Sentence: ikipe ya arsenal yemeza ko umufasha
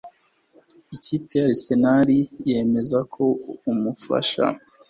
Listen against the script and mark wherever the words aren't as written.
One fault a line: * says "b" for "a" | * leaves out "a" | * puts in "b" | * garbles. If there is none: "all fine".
all fine